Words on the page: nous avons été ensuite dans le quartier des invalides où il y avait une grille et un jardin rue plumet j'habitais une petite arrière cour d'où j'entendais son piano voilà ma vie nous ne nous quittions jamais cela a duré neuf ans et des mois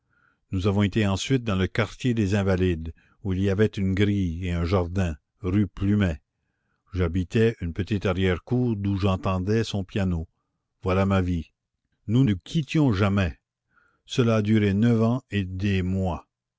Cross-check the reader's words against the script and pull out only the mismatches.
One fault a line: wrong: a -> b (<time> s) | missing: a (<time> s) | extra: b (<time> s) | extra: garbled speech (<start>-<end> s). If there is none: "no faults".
missing: ne (12.2 s)